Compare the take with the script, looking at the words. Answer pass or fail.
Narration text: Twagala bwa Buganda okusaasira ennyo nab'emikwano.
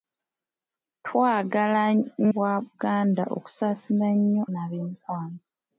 pass